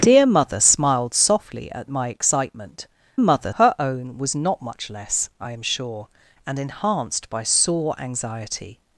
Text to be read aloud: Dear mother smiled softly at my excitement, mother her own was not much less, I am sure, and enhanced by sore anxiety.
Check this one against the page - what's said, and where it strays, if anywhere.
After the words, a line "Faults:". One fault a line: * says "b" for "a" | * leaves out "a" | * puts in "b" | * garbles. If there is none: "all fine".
Dear mother smiled softly at my excitement, mother her own was not much less, I am sure, and enhanced by sore anxiety.
Faults:
all fine